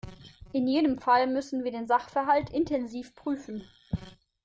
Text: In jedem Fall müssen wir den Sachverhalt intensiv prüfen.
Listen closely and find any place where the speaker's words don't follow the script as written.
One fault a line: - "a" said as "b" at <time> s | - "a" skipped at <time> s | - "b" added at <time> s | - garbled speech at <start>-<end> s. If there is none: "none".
none